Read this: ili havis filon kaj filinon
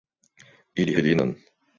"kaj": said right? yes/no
no